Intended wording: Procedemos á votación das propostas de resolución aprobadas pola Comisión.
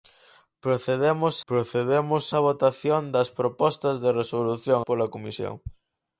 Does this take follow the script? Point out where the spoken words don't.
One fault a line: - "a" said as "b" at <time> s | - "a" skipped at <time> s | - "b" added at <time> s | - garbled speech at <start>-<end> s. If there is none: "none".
- "procedemos" added at 1.5 s
- "aprobadas" skipped at 4.8 s